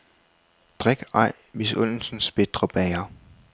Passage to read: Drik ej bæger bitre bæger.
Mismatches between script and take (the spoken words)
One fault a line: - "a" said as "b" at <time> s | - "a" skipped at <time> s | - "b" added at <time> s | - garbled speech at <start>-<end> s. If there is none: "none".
- "bæger" said as "misundelsens" at 1.5 s